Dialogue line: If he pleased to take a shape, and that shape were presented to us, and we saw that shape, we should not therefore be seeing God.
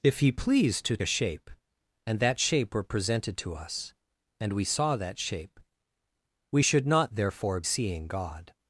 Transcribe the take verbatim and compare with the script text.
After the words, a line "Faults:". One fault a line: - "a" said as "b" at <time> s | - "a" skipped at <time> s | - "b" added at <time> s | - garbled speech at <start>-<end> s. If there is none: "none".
If he pleased to a shape, and that shape were presented to us, and we saw that shape, we should not therefore seeing God.
Faults:
- "take" skipped at 1.0 s
- "be" skipped at 7.6 s